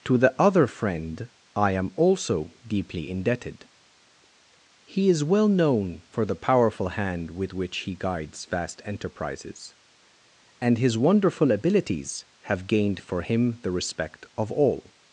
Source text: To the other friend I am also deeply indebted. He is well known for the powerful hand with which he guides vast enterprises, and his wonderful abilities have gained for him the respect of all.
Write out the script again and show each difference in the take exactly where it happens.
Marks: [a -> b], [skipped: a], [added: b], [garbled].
To the other friend I am also deeply indebted. He is well known for the powerful hand with which he guides vast enterprises, and his wonderful abilities have gained for him the respect of all.